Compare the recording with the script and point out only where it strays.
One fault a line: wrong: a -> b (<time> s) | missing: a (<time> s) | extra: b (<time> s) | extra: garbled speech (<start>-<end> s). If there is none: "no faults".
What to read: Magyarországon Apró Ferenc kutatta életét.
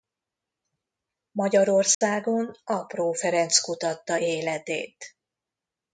no faults